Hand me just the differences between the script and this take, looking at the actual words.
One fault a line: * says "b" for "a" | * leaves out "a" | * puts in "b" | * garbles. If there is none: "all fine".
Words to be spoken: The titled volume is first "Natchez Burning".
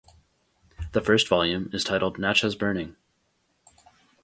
* says "first" for "titled"
* says "titled" for "first"